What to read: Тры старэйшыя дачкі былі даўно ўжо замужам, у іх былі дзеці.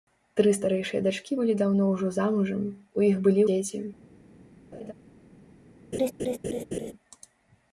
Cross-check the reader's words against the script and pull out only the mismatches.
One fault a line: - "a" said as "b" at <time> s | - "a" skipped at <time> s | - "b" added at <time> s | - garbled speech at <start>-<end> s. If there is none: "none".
none